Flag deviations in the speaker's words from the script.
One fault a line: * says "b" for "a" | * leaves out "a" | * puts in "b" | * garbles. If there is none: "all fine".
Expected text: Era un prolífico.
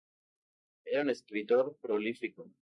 * puts in "escritor"